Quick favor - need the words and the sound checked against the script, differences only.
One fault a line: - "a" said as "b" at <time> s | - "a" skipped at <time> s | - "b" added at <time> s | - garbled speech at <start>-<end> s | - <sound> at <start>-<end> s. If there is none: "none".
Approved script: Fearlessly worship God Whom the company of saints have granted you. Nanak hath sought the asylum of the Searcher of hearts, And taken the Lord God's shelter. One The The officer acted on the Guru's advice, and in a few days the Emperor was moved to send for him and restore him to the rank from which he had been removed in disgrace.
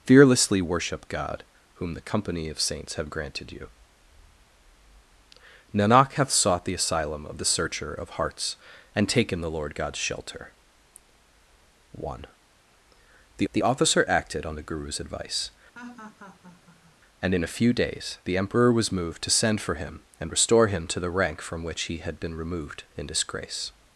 - laugh at 15.7-17.0 s